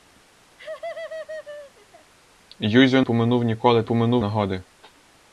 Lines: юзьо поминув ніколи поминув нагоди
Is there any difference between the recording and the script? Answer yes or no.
no